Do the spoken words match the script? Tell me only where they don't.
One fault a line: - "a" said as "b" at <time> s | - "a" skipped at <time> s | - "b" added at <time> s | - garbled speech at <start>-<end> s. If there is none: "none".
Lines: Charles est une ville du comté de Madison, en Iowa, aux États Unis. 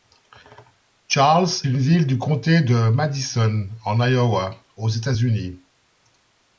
- "est" skipped at 1.5 s